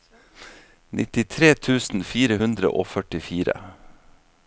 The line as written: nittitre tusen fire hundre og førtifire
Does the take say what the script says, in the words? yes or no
yes